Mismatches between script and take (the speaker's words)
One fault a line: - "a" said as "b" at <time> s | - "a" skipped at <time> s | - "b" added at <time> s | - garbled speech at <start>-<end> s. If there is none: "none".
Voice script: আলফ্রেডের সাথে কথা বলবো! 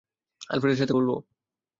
- "কথা" skipped at 0.9 s